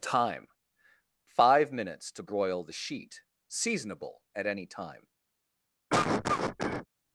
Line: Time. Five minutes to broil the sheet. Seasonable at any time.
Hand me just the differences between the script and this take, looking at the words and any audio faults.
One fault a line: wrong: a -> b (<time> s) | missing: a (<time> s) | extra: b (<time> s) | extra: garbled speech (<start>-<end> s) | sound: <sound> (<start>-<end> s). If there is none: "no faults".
sound: cough (5.9-6.9 s)